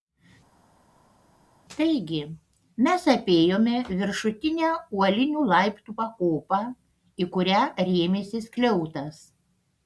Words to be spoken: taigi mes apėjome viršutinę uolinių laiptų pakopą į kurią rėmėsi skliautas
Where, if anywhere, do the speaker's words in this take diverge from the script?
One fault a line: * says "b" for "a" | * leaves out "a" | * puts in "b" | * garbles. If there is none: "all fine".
all fine